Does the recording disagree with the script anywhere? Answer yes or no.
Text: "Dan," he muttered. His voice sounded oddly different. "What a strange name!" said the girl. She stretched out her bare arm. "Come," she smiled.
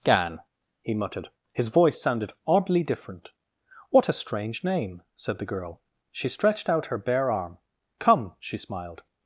yes